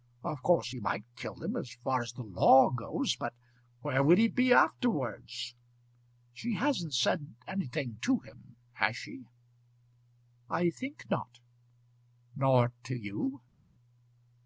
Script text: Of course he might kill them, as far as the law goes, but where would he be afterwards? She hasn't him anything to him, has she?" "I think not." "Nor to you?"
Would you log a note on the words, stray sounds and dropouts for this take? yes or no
yes